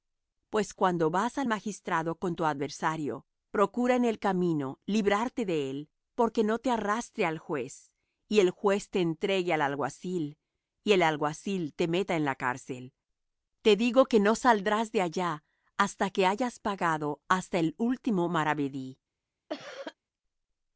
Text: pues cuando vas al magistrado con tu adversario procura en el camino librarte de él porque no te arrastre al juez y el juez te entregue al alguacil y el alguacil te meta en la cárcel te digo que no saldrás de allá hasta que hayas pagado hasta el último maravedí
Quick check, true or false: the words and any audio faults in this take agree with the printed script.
false